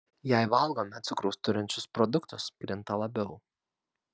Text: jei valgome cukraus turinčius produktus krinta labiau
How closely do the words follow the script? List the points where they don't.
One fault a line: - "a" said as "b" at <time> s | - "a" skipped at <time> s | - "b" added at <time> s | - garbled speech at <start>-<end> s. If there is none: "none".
none